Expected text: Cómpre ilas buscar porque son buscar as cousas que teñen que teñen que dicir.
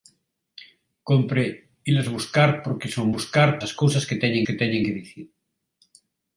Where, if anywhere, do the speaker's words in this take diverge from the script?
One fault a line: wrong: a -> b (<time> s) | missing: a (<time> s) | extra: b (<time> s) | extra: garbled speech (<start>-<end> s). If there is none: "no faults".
no faults